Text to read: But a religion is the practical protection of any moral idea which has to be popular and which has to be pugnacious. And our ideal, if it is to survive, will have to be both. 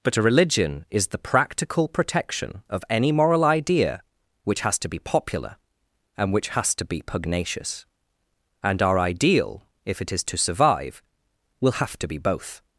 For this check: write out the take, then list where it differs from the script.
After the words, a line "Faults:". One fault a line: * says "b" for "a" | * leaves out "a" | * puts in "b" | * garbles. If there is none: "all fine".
But a religion is the practical protection of any moral idea which has to be popular and which has to be pugnacious. And our ideal, if it is to survive, will have to be both.
Faults:
all fine